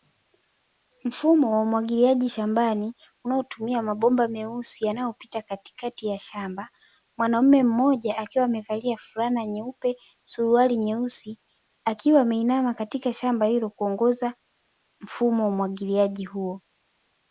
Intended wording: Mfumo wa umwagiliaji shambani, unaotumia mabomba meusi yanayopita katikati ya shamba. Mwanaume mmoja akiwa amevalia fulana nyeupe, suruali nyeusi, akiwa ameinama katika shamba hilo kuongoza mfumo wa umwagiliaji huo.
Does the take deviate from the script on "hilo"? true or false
false